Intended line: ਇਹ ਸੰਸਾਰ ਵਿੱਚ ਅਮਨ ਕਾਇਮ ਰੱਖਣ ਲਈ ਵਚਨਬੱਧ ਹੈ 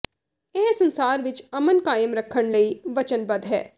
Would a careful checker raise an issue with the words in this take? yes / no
no